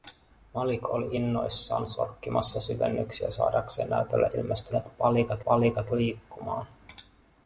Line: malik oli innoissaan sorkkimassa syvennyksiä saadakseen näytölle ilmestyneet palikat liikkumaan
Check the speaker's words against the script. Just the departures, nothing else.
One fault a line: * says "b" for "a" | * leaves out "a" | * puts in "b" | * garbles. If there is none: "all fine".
* puts in "palikat"